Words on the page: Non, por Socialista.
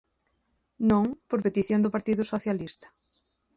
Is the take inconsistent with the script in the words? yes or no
yes